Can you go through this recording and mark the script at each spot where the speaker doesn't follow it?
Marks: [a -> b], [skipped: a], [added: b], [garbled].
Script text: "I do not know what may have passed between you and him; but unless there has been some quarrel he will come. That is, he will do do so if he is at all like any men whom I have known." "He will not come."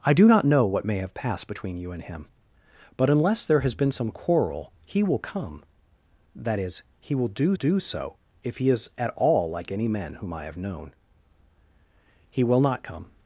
"I do not know what may have passed between you and him; but unless there has been some quarrel he will come. That is, he will do do so if he is at all like any men whom I have known." "He will not come."